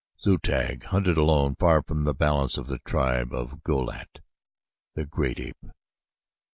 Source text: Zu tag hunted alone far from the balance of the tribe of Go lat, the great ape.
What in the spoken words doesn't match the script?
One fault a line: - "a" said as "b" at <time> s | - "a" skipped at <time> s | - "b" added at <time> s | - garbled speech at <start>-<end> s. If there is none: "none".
none